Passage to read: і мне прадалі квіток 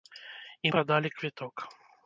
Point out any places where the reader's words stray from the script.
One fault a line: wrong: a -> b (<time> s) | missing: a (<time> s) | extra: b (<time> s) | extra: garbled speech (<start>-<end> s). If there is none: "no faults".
missing: мне (0.7 s)